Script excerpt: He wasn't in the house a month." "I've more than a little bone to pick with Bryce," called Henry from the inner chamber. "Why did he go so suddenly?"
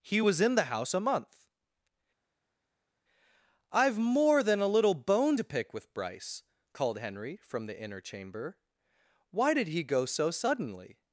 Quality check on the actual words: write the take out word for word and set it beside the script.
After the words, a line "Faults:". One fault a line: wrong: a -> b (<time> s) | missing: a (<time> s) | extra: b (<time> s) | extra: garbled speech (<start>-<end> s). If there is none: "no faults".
He was in the house a month." "I've more than a little bone to pick with Bryce," called Henry from the inner chamber. "Why did he go so suddenly?"
Faults:
wrong: wasn't -> was (0.2 s)